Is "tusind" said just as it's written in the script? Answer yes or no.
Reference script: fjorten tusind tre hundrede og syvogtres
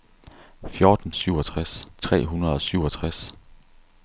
no